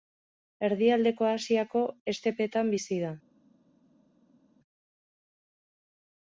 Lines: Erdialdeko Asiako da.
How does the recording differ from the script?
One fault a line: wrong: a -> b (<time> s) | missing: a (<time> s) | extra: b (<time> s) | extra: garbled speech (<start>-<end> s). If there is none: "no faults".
extra: estepetan bizi (2.1 s)